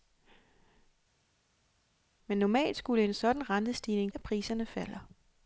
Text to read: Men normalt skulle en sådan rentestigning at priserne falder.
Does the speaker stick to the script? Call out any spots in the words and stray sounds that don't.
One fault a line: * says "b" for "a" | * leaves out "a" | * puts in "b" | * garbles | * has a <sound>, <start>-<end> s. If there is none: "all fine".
all fine